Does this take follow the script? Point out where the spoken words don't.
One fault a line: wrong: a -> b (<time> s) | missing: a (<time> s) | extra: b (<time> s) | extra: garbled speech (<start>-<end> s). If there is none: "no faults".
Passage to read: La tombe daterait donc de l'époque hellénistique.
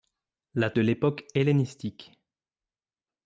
missing: tombe daterait donc (0.7 s)